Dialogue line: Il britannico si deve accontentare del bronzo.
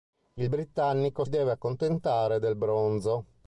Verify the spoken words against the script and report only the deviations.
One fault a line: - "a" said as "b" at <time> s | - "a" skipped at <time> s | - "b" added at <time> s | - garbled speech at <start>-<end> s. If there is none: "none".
- "si" skipped at 1.2 s